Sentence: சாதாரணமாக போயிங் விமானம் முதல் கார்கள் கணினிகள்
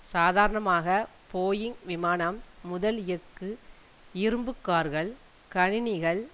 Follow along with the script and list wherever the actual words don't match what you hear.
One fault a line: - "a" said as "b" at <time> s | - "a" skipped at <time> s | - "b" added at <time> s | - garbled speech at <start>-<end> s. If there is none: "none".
- "எஃகு இரும்பு" added at 3.1 s